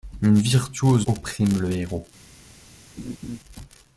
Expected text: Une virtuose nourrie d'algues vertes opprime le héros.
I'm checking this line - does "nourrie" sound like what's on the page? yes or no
no